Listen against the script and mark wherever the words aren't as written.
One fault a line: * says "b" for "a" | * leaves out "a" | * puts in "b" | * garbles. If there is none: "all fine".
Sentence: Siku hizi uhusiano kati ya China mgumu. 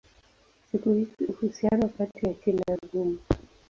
all fine